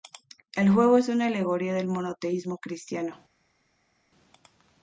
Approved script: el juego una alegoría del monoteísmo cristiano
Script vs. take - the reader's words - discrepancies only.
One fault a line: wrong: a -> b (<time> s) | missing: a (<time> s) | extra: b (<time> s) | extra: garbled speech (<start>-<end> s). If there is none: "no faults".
extra: es (1.0 s)